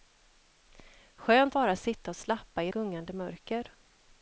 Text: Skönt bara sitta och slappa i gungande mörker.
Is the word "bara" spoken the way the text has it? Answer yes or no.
yes